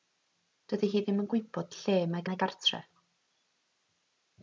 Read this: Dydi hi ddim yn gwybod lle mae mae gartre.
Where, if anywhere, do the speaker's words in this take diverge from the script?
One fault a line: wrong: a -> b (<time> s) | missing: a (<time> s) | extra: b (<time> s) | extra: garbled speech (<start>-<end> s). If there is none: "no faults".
no faults